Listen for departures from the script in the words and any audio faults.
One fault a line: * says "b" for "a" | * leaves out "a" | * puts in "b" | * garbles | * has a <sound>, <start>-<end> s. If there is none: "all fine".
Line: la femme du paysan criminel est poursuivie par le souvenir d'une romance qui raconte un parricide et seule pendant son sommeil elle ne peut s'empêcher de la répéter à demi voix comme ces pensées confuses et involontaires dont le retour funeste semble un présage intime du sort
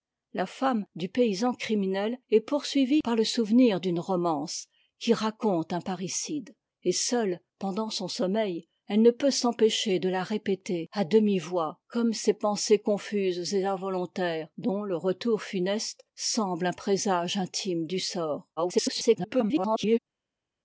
* garbles